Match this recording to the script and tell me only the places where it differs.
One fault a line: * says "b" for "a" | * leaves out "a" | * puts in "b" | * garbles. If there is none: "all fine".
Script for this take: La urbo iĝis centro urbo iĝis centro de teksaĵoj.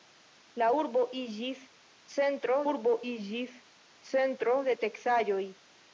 all fine